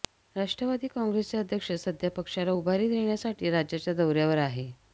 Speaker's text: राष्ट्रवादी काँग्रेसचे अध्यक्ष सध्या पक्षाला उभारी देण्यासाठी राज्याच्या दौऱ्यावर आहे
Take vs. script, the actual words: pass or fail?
pass